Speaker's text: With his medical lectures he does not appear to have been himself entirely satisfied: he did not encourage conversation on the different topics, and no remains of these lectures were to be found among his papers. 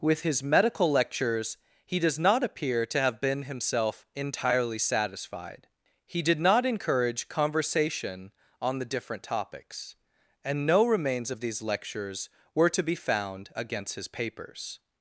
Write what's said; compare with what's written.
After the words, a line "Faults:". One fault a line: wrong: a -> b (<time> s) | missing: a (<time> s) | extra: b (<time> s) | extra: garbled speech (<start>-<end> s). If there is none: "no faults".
With his medical lectures he does not appear to have been himself entirely satisfied: he did not encourage conversation on the different topics, and no remains of these lectures were to be found against his papers.
Faults:
wrong: among -> against (13.5 s)